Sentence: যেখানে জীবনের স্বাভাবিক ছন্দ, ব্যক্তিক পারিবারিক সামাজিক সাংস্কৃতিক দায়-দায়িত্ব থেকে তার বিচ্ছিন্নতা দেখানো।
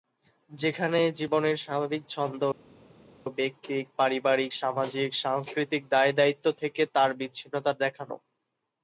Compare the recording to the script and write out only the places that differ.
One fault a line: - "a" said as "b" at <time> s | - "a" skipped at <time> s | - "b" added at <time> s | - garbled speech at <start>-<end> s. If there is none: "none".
none